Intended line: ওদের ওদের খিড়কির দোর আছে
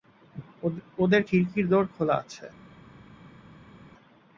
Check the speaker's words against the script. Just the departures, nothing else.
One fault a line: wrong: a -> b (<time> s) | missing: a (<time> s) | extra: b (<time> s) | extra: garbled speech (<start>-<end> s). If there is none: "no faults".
missing: ওদের (1.2 s)
extra: খোলা (1.9 s)